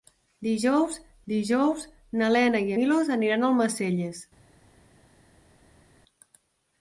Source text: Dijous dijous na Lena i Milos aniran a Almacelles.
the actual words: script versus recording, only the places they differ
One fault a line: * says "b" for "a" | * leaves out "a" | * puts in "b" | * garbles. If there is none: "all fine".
all fine